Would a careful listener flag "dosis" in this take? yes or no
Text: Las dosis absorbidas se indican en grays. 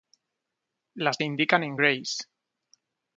yes